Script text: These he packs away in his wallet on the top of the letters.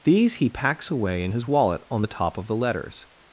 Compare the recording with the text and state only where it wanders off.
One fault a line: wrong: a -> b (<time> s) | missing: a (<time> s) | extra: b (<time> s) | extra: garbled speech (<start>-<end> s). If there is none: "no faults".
no faults